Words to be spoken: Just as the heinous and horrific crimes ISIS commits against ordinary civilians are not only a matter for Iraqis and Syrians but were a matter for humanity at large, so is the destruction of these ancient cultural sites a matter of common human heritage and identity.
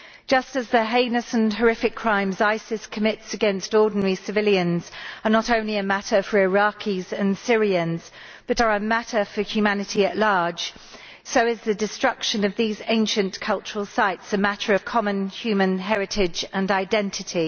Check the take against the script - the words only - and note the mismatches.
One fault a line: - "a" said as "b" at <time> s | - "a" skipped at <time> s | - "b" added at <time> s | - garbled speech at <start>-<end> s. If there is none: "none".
- "were" said as "are" at 8.6 s